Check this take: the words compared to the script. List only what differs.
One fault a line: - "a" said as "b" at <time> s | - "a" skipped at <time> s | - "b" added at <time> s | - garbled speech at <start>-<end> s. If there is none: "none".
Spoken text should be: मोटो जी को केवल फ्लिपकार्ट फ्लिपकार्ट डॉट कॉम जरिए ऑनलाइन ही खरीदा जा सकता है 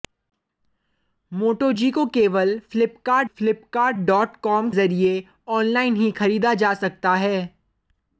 none